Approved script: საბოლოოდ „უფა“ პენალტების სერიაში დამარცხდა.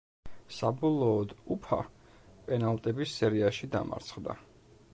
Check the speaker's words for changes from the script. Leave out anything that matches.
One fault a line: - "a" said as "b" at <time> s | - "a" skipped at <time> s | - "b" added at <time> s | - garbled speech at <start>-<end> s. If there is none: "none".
none